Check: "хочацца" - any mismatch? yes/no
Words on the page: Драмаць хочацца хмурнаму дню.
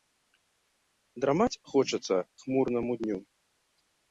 no